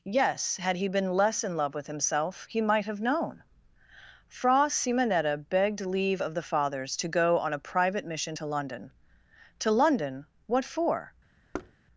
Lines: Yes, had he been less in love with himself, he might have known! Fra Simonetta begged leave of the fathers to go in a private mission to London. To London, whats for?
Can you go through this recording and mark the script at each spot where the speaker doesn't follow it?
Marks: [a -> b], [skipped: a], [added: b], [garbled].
Yes, had he been less in love with himself, he might have known! Fra Simonetta begged leave of the fathers to go [in -> on] a private mission to London. To London, [whats -> what] for?